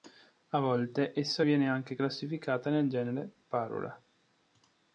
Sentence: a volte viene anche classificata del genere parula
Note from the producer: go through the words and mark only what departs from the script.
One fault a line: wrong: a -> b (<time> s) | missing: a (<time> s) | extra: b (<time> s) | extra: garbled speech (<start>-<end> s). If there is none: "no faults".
extra: essa (1.1 s)
wrong: del -> nel (2.7 s)